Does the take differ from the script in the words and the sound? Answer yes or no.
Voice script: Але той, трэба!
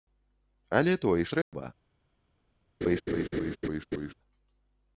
yes